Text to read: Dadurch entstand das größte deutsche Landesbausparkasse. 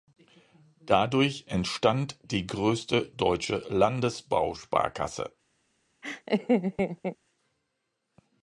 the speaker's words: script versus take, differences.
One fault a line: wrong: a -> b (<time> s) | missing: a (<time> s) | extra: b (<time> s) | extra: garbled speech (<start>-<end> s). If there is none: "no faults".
wrong: das -> die (2.2 s)